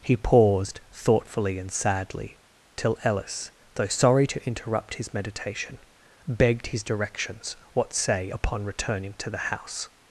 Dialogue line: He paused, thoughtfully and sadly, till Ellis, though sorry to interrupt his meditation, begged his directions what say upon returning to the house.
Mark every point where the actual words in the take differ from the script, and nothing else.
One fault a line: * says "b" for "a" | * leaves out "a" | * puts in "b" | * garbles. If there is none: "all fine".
all fine